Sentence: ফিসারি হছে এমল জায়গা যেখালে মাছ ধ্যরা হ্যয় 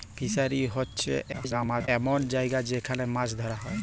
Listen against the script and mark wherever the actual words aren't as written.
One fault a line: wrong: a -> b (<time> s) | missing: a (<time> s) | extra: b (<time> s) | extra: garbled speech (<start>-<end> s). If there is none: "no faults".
extra: garbled speech (1.3-1.9 s)